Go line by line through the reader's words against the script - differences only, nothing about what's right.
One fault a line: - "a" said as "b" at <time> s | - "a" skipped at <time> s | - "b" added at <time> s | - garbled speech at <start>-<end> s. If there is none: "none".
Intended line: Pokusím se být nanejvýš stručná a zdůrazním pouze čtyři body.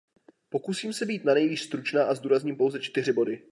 none